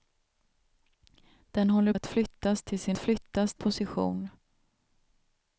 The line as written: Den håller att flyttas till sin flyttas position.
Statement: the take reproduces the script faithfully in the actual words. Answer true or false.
true